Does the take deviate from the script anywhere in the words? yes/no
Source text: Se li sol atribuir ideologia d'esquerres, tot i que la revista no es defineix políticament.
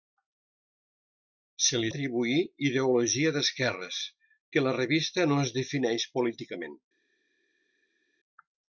yes